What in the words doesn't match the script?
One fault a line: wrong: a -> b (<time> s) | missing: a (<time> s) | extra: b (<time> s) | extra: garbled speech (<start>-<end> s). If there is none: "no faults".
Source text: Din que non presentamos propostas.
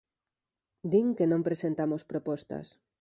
no faults